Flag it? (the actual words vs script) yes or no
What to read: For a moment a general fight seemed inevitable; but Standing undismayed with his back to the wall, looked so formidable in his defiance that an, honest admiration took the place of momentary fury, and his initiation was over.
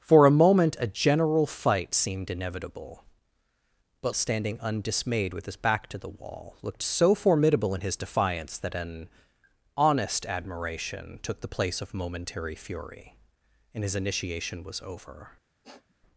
no